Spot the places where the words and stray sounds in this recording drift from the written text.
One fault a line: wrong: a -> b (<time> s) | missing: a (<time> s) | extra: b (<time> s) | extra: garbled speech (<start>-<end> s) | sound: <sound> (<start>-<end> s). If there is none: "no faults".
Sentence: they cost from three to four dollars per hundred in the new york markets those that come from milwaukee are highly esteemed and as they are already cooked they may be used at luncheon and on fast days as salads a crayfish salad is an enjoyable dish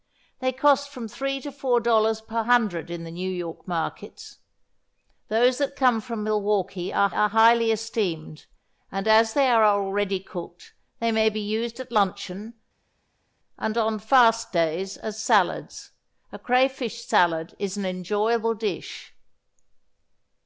extra: are (7.1 s)